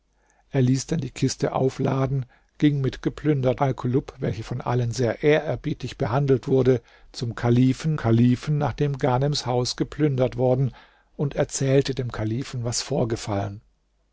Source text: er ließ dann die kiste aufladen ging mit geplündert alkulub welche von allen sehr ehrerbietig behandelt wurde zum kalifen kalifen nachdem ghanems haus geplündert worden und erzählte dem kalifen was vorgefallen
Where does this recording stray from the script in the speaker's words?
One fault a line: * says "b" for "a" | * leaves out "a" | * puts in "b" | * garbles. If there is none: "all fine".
all fine